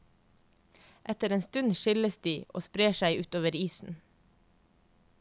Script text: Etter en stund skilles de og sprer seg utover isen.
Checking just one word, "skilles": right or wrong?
right